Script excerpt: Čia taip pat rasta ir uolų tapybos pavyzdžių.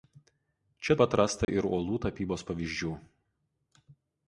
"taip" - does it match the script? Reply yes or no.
no